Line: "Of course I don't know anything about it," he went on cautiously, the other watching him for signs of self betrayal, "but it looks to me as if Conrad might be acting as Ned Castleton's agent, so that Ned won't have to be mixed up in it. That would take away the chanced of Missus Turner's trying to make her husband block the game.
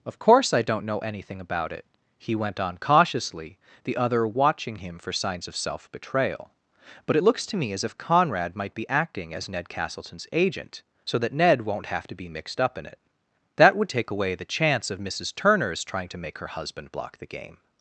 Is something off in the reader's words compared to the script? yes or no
yes